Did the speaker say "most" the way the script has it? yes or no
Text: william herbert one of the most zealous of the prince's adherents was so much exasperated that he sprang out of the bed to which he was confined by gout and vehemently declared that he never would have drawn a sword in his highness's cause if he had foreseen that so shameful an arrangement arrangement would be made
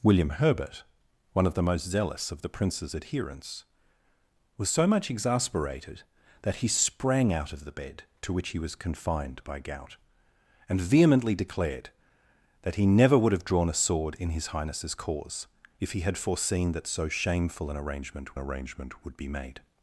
yes